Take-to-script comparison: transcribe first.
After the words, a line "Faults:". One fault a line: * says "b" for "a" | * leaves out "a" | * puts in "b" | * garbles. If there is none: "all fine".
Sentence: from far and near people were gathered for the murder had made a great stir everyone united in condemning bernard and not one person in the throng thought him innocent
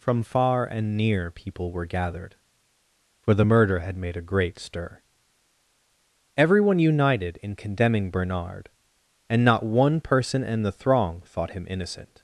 from far and near people were gathered for the murder had made a great stir everyone united in condemning bernard and not one person in the throng thought him innocent
Faults:
all fine